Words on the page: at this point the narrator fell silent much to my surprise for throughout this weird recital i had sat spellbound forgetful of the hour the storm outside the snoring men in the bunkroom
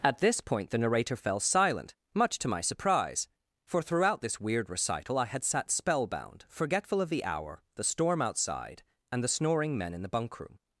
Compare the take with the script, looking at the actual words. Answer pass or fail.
fail